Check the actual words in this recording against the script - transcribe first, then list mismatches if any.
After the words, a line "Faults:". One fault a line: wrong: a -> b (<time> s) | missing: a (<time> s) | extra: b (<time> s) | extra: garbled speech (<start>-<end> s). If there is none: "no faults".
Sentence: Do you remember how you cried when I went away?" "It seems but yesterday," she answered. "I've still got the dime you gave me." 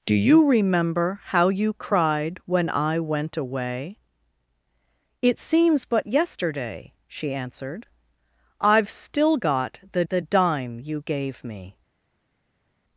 Do you remember how you cried when I went away?" "It seems but yesterday," she answered. "I've still got the the dime you gave me."
Faults:
extra: the (10.1 s)